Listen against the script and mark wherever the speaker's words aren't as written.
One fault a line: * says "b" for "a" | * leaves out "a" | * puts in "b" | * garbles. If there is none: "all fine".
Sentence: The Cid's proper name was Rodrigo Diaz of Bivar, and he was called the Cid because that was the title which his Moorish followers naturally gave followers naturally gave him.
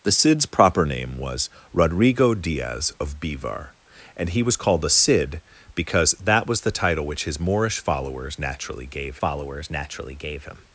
all fine